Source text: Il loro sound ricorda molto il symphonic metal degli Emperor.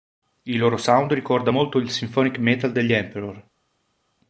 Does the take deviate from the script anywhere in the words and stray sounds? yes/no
no